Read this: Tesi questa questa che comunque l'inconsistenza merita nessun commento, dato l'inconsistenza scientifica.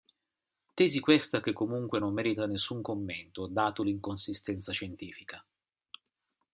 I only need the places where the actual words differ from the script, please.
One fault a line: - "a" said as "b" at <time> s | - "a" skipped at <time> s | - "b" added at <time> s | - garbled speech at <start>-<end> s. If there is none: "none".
- "questa" skipped at 1.4 s
- "l'inconsistenza" said as "non" at 2.0 s